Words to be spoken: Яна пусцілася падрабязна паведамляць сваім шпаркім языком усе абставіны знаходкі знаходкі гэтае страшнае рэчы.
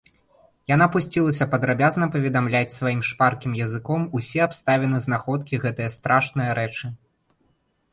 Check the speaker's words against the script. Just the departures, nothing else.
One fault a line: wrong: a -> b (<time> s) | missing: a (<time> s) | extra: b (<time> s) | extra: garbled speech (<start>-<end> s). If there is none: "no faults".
missing: знаходкі (5.7 s)